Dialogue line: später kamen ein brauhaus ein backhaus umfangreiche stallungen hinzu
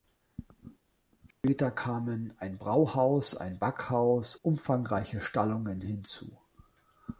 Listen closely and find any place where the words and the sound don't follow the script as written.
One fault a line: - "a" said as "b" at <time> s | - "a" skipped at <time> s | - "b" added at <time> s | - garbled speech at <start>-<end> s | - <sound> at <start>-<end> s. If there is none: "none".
- dropout at 1.3-1.4 s